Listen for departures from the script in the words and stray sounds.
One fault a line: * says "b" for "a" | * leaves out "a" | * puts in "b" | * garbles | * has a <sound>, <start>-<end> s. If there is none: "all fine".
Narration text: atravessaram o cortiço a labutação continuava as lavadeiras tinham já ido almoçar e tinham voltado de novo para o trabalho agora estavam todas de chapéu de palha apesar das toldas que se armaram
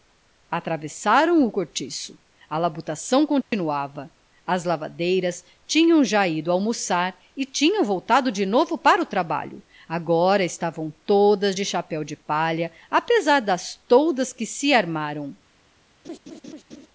* has a dropout, 3.4-3.5 s
* has a laugh, 16.0-16.9 s